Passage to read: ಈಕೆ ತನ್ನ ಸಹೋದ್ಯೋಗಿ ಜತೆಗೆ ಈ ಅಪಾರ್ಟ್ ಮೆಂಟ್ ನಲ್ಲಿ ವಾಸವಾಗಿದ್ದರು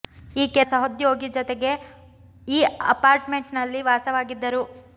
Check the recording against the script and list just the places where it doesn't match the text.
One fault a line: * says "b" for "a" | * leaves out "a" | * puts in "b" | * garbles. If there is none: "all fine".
* leaves out "ತನ್ನ"